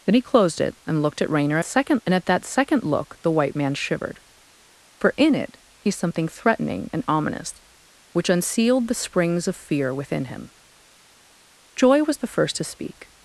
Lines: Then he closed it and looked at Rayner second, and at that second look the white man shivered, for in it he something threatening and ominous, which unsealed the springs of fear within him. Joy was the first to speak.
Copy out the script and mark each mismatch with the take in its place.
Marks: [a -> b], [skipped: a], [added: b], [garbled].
Then he closed it and looked at Rayner second, and at that second look the white man shivered, for in it he something threatening and ominous, which unsealed the springs of fear within him. Joy was the first to speak.